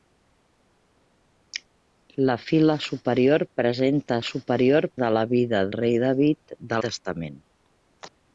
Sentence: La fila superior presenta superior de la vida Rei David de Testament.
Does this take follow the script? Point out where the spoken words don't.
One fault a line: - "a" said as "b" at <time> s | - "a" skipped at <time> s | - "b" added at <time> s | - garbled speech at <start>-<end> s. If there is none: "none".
none